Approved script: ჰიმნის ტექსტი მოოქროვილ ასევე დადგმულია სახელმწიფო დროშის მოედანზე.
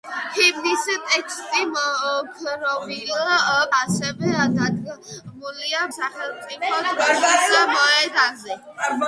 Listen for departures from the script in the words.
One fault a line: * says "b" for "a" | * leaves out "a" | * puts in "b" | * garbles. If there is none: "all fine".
all fine